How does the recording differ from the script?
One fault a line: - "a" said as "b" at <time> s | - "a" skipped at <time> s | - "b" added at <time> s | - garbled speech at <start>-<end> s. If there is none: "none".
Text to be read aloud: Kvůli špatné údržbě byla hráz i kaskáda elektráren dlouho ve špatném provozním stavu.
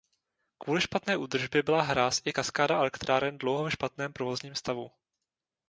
none